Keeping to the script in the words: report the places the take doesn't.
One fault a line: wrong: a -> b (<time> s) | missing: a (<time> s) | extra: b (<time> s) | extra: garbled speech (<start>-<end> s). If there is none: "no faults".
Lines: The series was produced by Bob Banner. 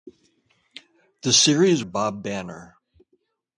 missing: was produced by (1.8 s)